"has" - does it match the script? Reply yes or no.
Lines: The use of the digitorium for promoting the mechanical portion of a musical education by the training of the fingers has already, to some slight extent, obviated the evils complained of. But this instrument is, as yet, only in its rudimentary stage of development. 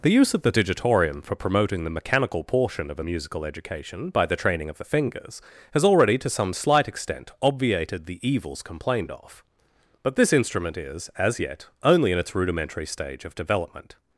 yes